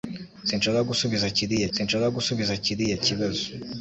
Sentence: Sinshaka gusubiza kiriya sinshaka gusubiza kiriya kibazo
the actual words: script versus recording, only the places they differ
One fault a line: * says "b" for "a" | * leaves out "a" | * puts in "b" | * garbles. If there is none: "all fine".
all fine